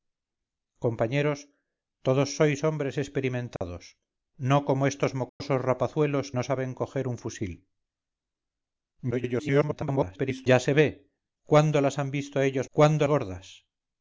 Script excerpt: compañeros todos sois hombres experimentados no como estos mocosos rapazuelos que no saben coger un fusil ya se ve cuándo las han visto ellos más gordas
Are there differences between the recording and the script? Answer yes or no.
yes